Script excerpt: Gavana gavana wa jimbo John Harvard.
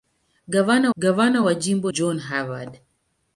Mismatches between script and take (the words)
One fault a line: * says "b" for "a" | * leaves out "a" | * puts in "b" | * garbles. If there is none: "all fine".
all fine